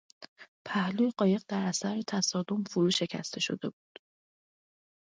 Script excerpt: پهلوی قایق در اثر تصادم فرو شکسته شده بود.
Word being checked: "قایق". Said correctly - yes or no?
yes